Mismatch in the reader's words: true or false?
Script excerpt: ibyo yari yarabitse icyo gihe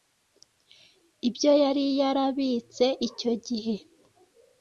false